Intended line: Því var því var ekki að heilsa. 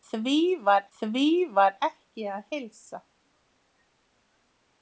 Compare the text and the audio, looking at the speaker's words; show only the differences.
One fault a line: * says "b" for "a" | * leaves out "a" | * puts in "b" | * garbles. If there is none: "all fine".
all fine